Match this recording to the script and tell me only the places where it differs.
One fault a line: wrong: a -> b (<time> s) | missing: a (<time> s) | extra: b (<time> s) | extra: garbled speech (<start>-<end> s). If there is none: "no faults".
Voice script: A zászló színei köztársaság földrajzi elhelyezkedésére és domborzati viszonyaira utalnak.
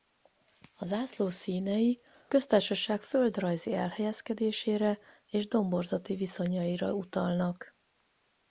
no faults